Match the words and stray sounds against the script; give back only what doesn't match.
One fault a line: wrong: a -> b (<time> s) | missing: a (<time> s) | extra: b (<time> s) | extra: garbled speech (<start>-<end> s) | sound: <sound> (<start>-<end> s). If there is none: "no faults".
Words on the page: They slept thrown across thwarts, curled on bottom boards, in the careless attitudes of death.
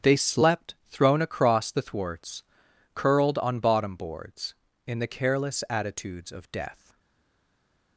extra: the (1.7 s)